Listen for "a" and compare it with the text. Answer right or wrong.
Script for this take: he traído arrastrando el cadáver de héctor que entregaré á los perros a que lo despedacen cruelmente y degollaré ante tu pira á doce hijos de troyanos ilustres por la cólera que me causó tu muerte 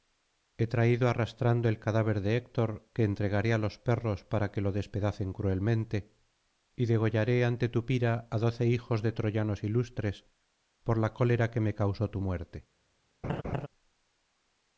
wrong